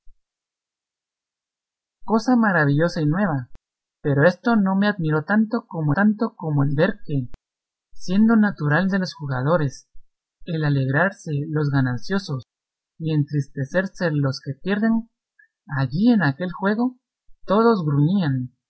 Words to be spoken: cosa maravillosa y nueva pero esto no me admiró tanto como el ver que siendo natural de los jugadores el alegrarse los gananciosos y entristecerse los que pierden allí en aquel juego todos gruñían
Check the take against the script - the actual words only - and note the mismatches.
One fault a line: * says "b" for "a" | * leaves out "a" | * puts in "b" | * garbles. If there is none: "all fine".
* puts in "tanto como"